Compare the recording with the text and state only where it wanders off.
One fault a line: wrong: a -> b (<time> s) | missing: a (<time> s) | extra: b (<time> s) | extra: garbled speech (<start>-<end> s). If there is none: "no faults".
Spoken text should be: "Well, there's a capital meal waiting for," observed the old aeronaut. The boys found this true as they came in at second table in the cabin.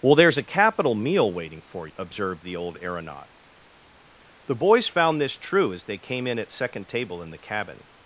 no faults